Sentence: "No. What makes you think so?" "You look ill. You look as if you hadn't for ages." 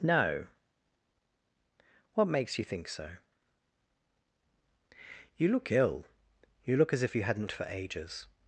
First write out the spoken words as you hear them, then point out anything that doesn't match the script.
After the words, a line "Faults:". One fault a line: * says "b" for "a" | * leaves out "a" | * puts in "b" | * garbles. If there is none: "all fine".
"No. What makes you think so?" "You look ill. You look as if you hadn't for ages."
Faults:
all fine